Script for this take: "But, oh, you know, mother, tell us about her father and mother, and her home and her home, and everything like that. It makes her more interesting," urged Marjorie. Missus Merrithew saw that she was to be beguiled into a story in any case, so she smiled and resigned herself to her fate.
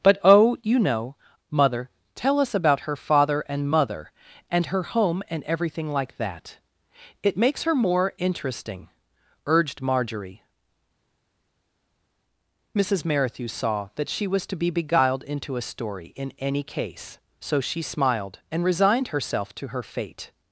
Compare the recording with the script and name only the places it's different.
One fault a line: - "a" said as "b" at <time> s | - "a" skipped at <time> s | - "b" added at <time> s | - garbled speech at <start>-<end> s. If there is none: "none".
- "her home and" skipped at 5.4 s